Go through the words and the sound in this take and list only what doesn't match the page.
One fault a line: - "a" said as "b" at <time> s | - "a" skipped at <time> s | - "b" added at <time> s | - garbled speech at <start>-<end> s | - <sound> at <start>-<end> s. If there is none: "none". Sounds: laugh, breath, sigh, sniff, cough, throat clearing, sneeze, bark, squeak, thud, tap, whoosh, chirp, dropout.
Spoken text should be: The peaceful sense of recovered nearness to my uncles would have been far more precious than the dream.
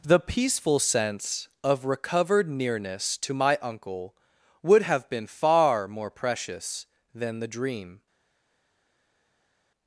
- "uncles" said as "uncle" at 3.6 s